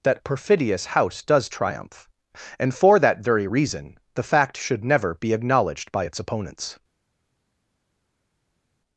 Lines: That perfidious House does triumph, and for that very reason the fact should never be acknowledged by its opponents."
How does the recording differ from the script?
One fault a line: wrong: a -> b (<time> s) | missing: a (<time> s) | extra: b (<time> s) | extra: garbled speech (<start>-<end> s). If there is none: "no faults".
no faults